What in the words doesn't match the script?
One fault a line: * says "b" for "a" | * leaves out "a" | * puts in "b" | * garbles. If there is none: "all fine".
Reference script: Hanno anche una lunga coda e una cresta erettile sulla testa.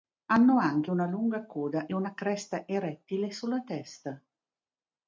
all fine